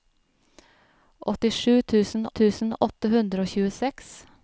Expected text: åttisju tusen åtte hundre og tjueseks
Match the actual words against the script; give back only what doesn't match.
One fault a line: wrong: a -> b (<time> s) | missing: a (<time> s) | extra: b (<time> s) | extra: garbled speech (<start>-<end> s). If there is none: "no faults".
extra: tusen (2.4 s)